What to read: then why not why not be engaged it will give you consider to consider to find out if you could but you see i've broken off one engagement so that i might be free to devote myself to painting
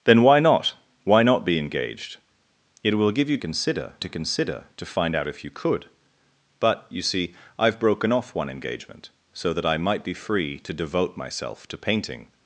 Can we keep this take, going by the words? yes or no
yes